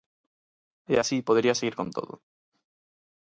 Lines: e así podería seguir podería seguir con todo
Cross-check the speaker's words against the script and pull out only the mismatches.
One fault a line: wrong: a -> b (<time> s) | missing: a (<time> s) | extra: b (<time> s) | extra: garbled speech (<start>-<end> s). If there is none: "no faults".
missing: podería seguir (1.7 s)